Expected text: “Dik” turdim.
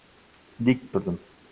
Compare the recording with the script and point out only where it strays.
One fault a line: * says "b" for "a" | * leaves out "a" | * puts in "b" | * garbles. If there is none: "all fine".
all fine